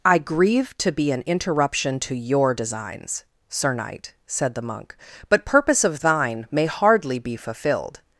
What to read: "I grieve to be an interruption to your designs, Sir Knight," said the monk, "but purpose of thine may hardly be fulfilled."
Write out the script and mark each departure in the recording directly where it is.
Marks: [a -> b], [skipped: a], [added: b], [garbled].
"I grieve to be an interruption to your designs, Sir Knight," said the monk, "but purpose of thine may hardly be fulfilled."